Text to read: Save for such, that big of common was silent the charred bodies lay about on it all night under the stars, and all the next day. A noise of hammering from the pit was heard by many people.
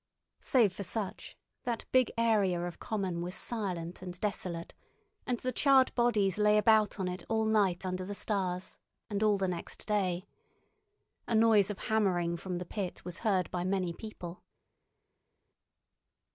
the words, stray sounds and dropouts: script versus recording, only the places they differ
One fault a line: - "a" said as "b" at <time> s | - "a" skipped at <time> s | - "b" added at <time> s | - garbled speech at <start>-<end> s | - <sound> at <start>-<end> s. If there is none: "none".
- "area" added at 2.2 s
- "and desolate and" added at 4.0 s